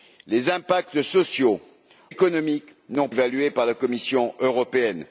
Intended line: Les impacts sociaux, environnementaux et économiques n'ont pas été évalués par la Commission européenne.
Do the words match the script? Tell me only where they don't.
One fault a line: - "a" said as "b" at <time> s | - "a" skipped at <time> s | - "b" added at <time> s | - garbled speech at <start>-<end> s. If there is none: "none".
- "environnementaux et" skipped at 1.6 s
- "pas été" skipped at 3.1 s